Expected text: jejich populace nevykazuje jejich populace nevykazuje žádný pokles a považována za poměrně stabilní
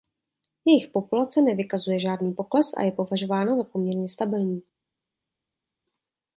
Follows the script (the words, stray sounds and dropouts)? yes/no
no